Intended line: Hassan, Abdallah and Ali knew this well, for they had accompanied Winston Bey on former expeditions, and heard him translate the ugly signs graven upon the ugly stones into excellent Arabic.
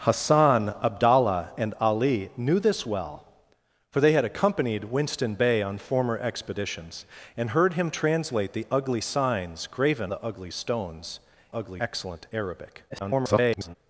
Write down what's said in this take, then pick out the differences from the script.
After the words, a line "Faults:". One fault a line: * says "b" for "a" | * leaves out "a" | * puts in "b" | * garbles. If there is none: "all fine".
Hassan, Abdallah and Ali knew this well, for they had accompanied Winston Bey on former expeditions, and heard him translate the ugly signs graven the ugly stones ugly excellent Arabic. [garbled]
Faults:
* leaves out "upon"
* says "ugly" for "into"
* garbles